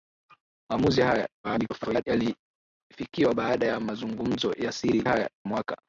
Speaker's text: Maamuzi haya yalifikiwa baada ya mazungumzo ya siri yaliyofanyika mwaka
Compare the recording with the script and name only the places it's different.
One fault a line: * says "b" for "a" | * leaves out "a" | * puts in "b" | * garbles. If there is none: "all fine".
* garbles
* says "haya" for "yaliyofanyika"